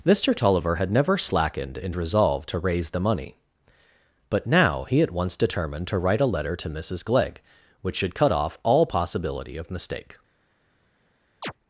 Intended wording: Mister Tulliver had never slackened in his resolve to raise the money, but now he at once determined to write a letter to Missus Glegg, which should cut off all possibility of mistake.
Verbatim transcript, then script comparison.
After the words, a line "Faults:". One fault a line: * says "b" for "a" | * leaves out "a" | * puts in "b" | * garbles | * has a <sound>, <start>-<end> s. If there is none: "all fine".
Mister Tulliver had never slackened in resolve to raise the money, but now he at once determined to write a letter to Missus Glegg, which should cut off all possibility of mistake.
Faults:
* leaves out "his"
* has a chirp, 11.4-11.5 s